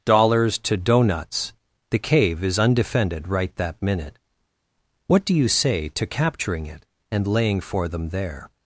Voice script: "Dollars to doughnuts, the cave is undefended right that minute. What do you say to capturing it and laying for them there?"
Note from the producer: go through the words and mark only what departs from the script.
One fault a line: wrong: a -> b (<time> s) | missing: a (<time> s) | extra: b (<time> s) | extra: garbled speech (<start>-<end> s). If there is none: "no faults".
no faults